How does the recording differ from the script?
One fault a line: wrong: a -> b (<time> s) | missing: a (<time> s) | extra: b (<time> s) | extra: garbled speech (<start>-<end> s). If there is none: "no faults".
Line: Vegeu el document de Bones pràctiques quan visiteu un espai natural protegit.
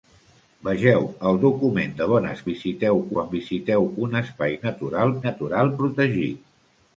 wrong: pràctiques -> visiteu (2.5 s)
extra: natural (5.3 s)